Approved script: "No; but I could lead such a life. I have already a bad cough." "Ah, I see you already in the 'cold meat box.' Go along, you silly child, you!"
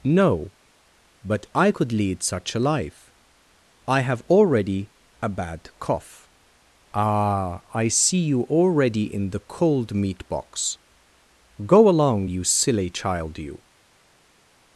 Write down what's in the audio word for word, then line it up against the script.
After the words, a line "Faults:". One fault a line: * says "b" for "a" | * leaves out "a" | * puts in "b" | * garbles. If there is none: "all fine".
"No; but I could lead such a life. I have already a bad cough." "Ah, I see you already in the 'cold meat box.' Go along, you silly child, you!"
Faults:
all fine